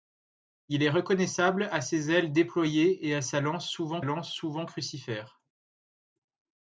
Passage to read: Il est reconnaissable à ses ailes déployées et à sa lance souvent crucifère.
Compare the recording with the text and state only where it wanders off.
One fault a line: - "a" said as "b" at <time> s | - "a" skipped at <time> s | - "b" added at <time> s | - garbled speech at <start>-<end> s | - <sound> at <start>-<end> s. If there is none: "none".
- "lance souvent" added at 4.0 s